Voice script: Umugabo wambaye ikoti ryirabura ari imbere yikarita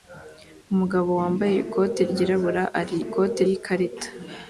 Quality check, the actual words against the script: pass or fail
fail